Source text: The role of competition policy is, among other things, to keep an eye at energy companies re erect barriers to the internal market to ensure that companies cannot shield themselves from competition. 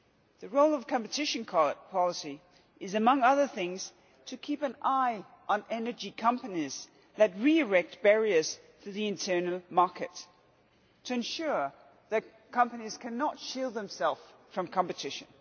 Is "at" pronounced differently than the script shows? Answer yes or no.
yes